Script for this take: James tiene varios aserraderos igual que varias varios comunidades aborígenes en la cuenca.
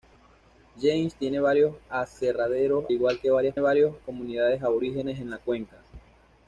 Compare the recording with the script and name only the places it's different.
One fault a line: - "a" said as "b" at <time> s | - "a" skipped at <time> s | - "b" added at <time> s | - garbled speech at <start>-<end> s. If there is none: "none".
none